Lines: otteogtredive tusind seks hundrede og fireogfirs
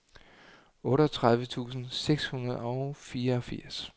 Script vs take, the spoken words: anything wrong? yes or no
no